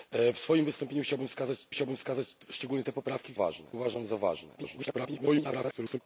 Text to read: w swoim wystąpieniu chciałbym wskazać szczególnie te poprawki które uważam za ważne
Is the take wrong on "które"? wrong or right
wrong